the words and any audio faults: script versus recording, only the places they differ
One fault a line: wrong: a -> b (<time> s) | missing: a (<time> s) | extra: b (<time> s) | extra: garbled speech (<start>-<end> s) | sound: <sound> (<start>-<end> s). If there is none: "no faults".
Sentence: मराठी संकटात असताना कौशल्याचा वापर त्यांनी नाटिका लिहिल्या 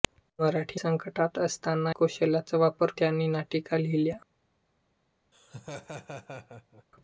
sound: laugh (5.3-6.8 s)